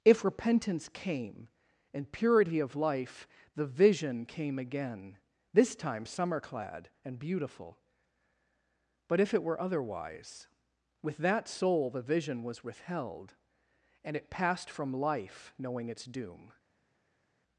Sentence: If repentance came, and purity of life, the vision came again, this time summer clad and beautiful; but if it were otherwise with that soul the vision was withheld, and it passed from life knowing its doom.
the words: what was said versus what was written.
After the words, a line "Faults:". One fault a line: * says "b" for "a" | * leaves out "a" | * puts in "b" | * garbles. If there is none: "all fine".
If repentance came, and purity of life, the vision came again, this time summer clad and beautiful; but if it were otherwise with that soul the vision was withheld, and it passed from life knowing its doom.
Faults:
all fine